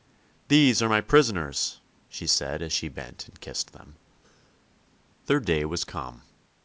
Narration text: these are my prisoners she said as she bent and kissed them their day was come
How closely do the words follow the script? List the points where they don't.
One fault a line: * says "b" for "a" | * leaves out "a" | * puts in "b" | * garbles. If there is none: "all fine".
all fine